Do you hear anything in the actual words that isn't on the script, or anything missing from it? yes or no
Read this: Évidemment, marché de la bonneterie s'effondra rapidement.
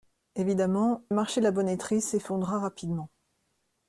no